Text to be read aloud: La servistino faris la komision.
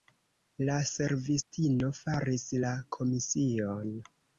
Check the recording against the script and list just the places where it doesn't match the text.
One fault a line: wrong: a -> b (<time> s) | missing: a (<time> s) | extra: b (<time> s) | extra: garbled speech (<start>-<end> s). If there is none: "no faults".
no faults